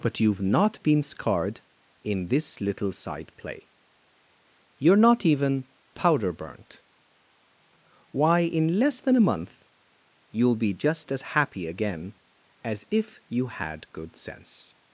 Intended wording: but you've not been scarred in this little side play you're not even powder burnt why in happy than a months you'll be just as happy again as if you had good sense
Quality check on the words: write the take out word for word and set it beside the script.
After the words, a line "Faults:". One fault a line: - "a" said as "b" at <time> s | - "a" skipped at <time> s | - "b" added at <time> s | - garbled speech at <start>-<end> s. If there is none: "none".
but you've not been scarred in this little side play you're not even powder burnt why in less than a month you'll be just as happy again as if you had good sense
Faults:
- "happy" said as "less" at 8.8 s
- "months" said as "month" at 9.3 s